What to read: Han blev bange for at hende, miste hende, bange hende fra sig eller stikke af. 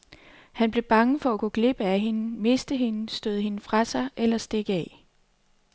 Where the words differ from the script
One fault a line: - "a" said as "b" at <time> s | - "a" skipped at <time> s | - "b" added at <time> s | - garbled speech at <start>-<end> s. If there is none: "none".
- "gå glip af" added at 1.4 s
- "bange" said as "støde" at 3.1 s